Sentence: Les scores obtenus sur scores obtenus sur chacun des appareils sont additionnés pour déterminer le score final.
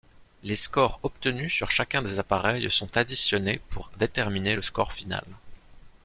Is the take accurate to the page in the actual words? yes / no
no